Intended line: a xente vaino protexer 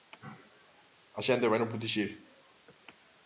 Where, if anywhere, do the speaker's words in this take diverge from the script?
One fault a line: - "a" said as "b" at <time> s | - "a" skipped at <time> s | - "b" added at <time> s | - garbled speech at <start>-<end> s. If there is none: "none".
none